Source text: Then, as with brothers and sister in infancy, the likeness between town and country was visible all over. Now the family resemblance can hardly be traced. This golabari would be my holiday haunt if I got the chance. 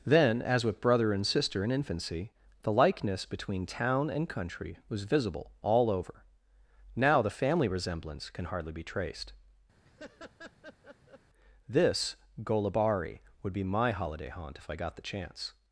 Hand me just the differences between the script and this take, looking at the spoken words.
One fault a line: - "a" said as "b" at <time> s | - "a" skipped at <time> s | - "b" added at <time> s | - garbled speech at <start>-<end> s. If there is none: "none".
- "brothers" said as "brother" at 0.8 s